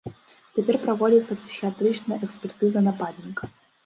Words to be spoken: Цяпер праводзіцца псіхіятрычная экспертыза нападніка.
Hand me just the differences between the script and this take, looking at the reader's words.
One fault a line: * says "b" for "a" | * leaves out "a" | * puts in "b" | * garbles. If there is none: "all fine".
all fine